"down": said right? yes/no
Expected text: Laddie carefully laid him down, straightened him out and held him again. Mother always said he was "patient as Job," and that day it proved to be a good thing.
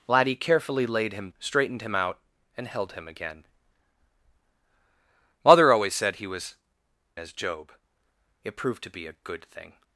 no